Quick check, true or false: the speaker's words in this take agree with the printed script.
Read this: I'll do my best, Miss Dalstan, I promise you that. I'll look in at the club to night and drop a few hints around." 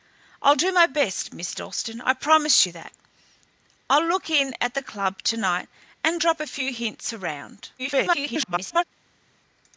false